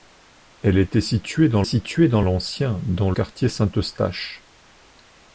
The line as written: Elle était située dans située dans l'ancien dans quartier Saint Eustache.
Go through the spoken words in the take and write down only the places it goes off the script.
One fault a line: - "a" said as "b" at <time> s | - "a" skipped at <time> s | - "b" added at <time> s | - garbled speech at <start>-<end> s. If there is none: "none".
none